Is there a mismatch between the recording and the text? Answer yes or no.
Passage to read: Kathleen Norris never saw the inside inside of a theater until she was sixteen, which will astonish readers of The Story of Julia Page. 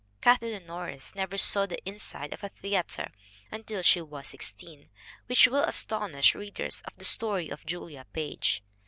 yes